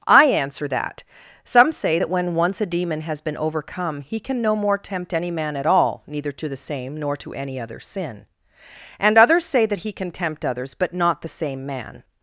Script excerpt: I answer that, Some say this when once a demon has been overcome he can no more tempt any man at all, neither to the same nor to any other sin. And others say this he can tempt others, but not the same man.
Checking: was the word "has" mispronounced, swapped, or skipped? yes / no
no